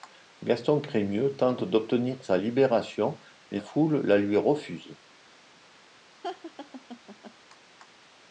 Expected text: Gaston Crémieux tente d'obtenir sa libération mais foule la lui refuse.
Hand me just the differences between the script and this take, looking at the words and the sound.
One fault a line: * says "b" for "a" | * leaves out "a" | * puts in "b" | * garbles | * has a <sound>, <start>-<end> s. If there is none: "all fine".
* has a laugh, 6.2-7.3 s